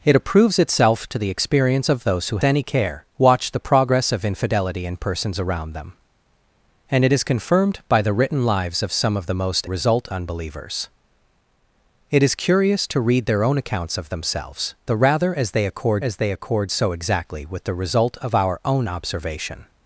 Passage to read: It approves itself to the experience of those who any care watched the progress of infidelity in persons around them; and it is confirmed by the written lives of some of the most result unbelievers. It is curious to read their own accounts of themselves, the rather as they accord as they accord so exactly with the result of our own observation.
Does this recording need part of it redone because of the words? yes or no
no